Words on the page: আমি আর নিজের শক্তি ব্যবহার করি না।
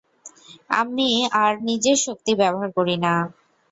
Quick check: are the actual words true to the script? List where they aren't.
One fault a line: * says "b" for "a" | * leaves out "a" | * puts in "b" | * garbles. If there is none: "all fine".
all fine